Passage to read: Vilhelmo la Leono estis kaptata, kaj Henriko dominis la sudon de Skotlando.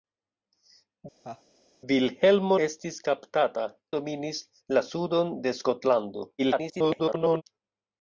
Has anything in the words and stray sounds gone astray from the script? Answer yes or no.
yes